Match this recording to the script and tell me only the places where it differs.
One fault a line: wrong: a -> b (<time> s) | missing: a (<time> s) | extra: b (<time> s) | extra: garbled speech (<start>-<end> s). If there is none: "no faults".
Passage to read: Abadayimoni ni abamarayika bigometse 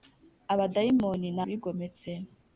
missing: abamarayika (1.4 s)